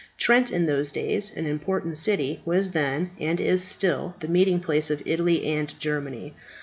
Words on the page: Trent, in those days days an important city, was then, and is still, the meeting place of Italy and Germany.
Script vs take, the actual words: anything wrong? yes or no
yes